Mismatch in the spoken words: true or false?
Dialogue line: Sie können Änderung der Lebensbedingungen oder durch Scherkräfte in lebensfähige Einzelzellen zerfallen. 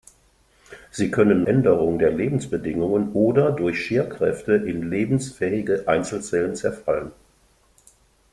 false